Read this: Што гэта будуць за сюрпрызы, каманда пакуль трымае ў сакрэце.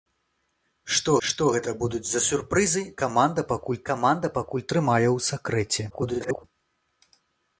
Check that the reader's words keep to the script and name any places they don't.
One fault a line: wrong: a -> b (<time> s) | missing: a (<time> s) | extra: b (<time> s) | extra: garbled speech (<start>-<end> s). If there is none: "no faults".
extra: што (1.3 s)
extra: каманда пакуль (3.9 s)
extra: garbled speech (5.9-6.4 s)